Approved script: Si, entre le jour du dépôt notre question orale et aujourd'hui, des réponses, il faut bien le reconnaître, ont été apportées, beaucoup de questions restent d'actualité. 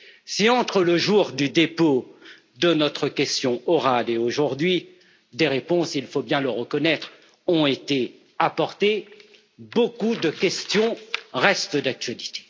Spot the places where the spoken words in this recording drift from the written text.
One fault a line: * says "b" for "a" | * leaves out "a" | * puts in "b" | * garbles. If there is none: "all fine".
* puts in "de"